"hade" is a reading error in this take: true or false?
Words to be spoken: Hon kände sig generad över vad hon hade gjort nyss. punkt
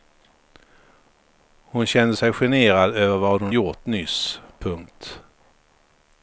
true